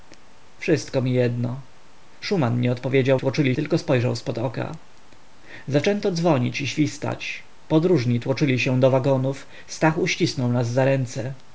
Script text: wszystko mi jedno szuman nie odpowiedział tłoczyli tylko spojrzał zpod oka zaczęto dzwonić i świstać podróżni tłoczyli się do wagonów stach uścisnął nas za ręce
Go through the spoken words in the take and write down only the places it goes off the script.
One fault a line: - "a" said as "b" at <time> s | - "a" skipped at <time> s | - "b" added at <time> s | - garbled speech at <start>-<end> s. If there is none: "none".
none